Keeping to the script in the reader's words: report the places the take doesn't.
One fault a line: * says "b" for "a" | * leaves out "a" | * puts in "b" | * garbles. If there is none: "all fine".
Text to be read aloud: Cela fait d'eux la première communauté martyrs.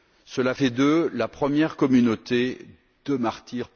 * puts in "de"